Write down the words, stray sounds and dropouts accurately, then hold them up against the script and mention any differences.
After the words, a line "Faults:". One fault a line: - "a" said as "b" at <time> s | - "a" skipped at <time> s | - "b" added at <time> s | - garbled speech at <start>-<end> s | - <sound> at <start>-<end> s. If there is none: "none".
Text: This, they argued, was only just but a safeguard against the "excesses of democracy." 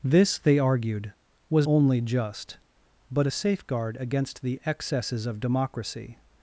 This, they argued, was only just but a safeguard against the "excesses of democracy."
Faults:
none